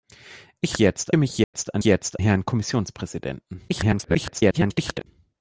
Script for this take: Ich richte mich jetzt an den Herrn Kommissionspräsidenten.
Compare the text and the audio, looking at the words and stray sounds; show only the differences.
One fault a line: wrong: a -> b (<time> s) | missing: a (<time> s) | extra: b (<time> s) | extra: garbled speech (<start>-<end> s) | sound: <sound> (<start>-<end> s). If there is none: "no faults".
wrong: richte -> jetzt (0.8 s)
sound: dropout (1.4-1.5 s)
wrong: den -> jetzt (1.8 s)
extra: garbled speech (3.7-5.1 s)